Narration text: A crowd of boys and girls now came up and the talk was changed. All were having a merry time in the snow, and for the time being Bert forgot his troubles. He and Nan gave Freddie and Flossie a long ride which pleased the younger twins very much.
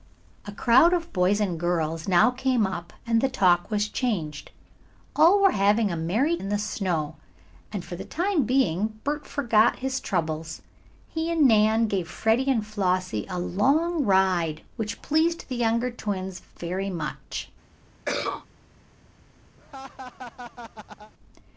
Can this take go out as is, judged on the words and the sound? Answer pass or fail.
fail